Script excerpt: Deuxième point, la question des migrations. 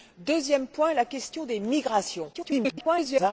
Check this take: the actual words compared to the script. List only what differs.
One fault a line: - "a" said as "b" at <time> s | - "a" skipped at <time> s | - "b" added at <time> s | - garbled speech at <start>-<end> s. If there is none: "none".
- garbled speech at 2.3-3.3 s